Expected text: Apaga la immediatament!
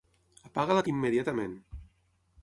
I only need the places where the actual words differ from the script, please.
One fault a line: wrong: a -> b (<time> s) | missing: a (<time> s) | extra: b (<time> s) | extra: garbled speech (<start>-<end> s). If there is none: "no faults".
no faults